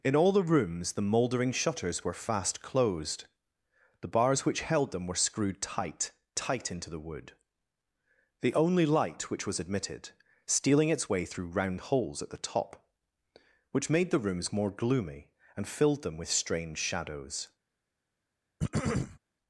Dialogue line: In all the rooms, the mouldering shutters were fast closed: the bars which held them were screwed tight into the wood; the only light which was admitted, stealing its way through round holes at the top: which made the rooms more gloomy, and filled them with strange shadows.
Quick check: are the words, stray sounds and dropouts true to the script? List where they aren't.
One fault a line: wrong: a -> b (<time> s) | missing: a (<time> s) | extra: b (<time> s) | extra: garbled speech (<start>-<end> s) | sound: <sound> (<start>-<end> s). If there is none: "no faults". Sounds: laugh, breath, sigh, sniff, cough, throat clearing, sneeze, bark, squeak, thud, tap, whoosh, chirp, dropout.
extra: tight (6.4 s)
sound: throat clearing (18.6-19.2 s)